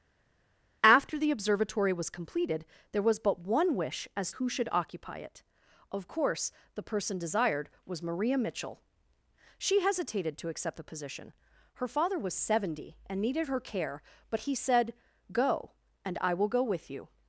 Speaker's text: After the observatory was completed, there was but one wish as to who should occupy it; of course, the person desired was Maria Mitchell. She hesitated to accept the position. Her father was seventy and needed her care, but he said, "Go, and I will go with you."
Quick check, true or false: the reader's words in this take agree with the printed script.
false